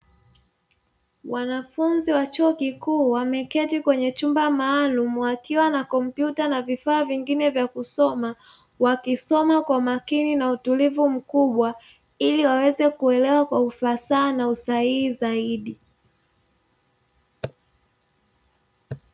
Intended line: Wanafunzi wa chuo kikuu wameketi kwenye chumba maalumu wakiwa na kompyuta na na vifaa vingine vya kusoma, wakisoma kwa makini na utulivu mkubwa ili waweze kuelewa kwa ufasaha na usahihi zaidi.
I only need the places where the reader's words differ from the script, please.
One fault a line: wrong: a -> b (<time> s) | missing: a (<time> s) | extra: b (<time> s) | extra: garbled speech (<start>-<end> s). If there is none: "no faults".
missing: na (6.6 s)